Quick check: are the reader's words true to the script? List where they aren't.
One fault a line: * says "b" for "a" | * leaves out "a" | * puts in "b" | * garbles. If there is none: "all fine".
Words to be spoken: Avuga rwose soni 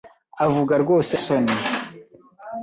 all fine